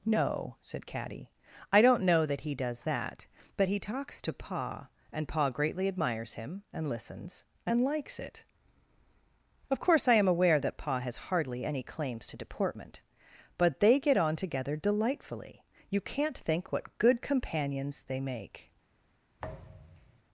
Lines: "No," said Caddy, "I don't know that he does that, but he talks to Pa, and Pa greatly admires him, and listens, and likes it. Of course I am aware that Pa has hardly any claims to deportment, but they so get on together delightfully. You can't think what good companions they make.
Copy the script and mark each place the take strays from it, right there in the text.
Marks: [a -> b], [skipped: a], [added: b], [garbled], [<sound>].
"No," said Caddy, "I don't know that he does that, but he talks to Pa, and Pa greatly admires him, and listens, and likes it. Of course I am aware that Pa has hardly any claims to deportment, but they [skipped: so] get on together delightfully. You can't think what good companions they make. [thud]